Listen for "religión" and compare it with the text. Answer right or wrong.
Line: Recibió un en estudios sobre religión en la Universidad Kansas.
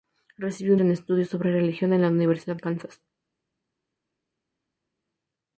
right